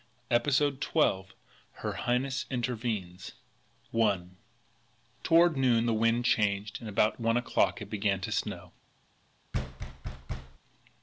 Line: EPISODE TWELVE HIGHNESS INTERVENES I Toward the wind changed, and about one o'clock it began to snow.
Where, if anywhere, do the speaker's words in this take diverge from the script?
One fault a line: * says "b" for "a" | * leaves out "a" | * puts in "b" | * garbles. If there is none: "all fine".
* puts in "HER"
* puts in "noon"